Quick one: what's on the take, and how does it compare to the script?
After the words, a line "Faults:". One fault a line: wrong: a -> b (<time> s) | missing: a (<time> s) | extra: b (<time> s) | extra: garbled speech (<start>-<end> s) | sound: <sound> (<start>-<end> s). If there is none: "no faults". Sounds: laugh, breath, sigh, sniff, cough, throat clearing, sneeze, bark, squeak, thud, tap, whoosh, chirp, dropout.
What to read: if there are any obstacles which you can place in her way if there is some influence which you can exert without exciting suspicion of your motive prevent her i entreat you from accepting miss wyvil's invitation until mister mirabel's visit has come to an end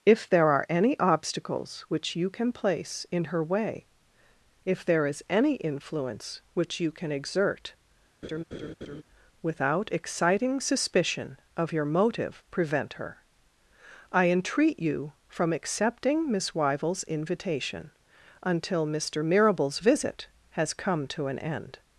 if there are any obstacles which you can place in her way if there is any influence which you can exert without exciting suspicion of your motive prevent her i entreat you from accepting miss wyvil's invitation until mister mirabel's visit has come to an end
Faults:
wrong: some -> any (5.3 s)
sound: laugh (8.2-9.0 s)